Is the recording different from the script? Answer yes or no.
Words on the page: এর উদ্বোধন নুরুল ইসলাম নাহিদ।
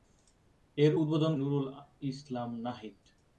no